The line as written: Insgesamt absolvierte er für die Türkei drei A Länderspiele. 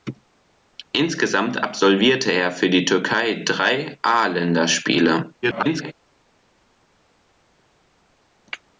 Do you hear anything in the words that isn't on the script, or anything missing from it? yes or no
yes